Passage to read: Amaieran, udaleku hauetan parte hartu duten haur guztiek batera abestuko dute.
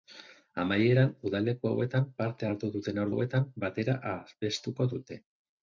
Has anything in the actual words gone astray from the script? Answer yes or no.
yes